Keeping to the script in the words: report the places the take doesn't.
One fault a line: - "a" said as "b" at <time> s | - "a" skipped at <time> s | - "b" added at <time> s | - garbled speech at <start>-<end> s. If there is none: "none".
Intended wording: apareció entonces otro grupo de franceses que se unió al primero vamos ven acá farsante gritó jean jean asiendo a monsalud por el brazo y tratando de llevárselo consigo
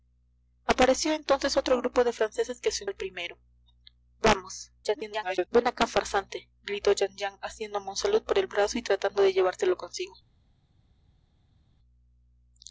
- "unió" skipped at 2.9 s
- garbled speech at 4.8-5.5 s